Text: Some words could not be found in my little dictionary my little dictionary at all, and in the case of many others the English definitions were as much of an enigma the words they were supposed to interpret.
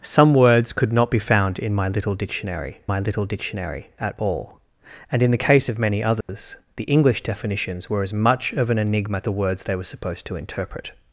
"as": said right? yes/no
yes